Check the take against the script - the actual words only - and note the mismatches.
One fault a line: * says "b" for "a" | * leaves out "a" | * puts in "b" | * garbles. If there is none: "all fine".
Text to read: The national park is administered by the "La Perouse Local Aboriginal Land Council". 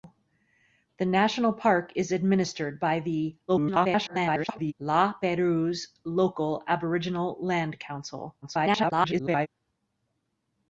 * garbles
* garbles